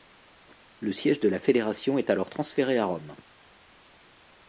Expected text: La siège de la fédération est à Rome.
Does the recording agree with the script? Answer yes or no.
no